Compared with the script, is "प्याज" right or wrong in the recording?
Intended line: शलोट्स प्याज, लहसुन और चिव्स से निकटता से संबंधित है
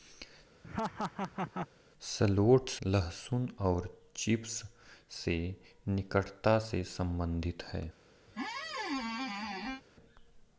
wrong